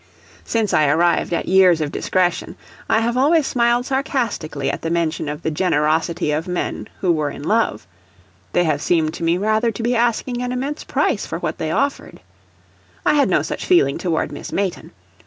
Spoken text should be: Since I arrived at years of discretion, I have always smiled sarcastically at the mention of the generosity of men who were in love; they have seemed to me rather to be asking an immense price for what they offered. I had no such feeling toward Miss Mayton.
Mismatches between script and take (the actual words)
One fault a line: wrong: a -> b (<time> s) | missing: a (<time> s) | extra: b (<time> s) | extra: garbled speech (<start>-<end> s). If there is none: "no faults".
no faults